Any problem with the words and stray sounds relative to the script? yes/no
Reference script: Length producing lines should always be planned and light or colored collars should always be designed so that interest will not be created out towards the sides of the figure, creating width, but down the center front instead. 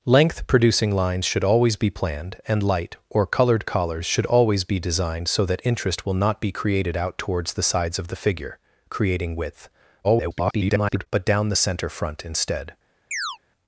yes